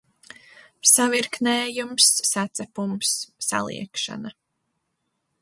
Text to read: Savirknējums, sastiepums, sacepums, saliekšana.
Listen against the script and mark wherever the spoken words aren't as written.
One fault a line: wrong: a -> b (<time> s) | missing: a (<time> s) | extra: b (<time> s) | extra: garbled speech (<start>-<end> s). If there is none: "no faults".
missing: sastiepums (2.1 s)